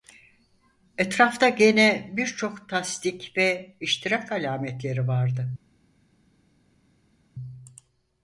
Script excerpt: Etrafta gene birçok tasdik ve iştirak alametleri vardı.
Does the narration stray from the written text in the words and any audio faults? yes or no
no